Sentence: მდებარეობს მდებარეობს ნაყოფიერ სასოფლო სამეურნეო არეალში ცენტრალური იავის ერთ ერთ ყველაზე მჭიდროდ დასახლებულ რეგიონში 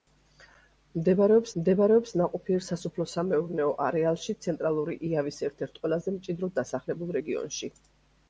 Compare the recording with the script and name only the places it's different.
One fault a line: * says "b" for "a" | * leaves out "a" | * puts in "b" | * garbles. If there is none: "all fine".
all fine